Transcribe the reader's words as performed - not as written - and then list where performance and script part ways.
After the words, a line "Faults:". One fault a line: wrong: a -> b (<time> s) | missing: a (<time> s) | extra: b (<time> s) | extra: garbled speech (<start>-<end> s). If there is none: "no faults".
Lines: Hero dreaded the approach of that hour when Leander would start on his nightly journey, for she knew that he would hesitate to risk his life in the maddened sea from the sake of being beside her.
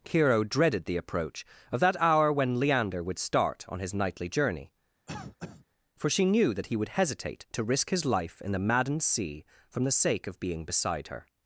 Hero dreaded the approach of that hour when Leander would start on his nightly journey, for she knew that he would hesitate to risk his life in the maddened sea from the sake of being beside her.
Faults:
no faults